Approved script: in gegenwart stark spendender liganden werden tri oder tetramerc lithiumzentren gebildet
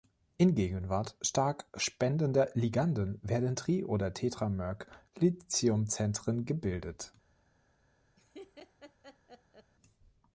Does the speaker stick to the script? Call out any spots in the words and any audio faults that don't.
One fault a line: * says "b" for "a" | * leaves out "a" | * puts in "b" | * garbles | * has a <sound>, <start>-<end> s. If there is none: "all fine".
* has a laugh, 8.2-9.7 s